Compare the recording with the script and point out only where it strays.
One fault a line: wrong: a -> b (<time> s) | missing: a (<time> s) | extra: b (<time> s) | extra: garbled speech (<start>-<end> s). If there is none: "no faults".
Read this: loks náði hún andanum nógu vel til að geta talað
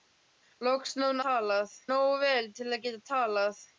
wrong: andanum -> talað (1.3 s)